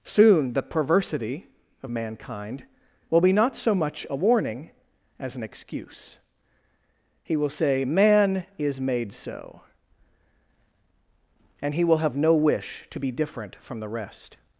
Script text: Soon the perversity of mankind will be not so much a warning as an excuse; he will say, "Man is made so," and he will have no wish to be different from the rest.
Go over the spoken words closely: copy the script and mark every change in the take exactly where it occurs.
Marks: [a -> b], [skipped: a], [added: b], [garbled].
Soon the perversity of mankind will be not so much a warning as an excuse; he will say, "Man is made so," and he will have no wish to be different from the rest.